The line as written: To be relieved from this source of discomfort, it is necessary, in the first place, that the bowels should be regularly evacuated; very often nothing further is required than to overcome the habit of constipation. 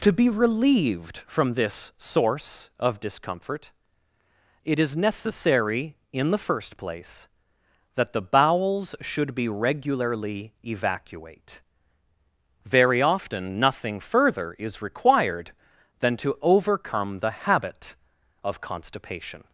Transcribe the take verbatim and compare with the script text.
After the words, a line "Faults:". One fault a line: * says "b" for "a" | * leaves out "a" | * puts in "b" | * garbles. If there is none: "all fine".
To be relieved from this source of discomfort, it is necessary, in the first place, that the bowels should be regularly evacuate; very often nothing further is required than to overcome the habit of constipation.
Faults:
* says "evacuate" for "evacuated"